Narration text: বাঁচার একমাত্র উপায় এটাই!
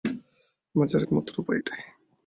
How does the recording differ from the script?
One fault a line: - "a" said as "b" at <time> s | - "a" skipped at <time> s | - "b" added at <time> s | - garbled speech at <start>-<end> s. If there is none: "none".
none